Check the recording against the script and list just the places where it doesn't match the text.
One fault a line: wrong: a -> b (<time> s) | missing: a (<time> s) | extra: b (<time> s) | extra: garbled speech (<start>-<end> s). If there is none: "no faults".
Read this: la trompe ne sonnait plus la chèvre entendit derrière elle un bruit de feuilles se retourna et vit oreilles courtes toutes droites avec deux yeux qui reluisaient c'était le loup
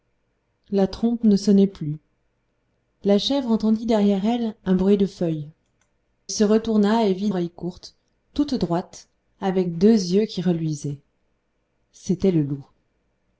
no faults